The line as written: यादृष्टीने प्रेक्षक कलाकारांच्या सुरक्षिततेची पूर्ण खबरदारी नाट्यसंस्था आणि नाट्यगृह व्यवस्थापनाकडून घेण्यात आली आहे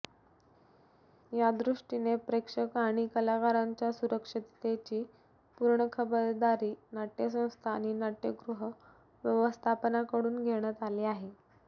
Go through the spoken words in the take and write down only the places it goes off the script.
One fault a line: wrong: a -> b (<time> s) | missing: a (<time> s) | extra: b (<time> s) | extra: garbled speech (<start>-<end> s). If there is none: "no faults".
extra: आणि (2.8 s)